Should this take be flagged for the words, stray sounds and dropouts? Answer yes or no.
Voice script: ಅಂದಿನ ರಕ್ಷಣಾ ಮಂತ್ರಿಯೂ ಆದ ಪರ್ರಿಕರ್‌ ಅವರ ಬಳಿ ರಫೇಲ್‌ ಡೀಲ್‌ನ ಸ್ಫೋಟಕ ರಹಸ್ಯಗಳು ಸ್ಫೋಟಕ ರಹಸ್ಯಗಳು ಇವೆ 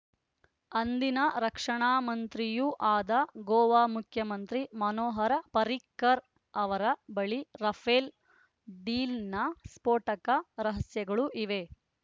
yes